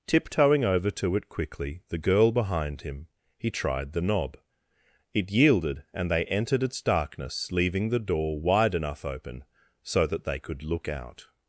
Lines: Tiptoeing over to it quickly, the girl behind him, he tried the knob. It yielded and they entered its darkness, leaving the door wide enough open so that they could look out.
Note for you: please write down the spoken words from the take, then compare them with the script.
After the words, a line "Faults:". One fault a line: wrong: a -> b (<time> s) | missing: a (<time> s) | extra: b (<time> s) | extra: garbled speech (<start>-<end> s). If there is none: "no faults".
Tiptoeing over to it quickly, the girl behind him, he tried the knob. It yielded and they entered its darkness, leaving the door wide enough open so that they could look out.
Faults:
no faults